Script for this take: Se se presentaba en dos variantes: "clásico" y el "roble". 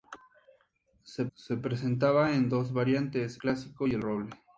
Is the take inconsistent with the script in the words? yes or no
no